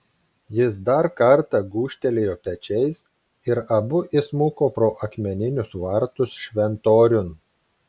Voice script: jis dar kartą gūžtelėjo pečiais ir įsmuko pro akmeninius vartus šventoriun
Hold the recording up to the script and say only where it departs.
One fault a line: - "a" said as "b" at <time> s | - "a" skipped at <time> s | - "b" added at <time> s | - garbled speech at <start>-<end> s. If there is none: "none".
- "abu" added at 3.8 s